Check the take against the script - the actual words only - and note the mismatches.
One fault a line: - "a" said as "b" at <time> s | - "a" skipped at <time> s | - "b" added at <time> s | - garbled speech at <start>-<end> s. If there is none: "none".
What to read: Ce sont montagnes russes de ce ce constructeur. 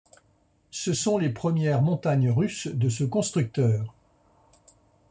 - "les premières" added at 1.2 s
- "ce" skipped at 3.0 s